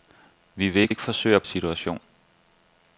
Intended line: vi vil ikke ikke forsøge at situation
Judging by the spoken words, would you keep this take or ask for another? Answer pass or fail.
pass